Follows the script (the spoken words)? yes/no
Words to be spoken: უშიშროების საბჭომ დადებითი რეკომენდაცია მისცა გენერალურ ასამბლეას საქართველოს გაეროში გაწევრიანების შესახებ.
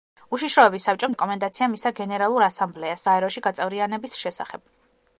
no